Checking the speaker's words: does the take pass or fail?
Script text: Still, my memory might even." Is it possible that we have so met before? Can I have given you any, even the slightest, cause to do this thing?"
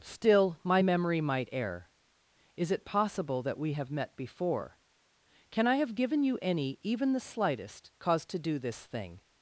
fail